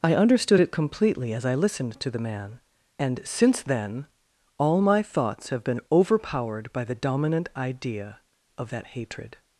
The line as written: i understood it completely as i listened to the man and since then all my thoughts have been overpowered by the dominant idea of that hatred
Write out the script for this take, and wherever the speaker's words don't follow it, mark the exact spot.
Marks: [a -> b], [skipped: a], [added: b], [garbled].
i understood it completely as i listened to the man and since then all my thoughts have been overpowered by the dominant idea of that hatred